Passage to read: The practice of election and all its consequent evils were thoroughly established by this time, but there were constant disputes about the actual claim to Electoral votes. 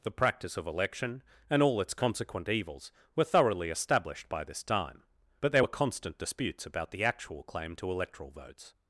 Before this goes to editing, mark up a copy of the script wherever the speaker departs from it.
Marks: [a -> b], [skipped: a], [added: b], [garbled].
The practice of election and all its consequent evils were thoroughly established by this time, but there were constant disputes about the actual claim to Electoral votes.